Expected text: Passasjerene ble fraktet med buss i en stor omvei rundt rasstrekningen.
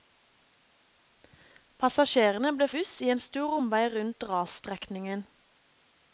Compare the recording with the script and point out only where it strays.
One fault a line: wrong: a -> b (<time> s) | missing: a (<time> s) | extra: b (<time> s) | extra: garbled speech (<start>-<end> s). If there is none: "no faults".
missing: fraktet med (2.7 s)